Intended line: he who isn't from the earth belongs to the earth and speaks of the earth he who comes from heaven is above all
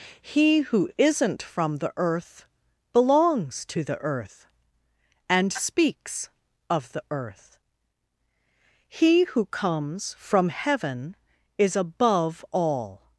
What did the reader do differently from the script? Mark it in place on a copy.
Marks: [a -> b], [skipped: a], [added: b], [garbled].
he who isn't from the earth belongs to the earth and speaks of the earth he who comes from heaven is above all